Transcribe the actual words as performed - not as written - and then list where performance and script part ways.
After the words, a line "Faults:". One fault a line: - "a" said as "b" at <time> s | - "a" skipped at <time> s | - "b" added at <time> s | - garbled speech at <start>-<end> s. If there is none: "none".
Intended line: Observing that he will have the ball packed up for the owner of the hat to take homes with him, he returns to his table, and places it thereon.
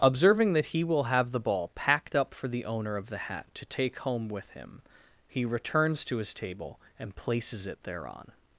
Observing that he will have the ball packed up for the owner of the hat to take home with him, he returns to his table, and places it thereon.
Faults:
- "homes" said as "home" at 4.0 s